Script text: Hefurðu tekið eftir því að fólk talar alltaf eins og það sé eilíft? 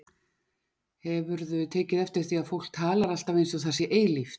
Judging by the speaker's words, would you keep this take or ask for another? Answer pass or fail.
pass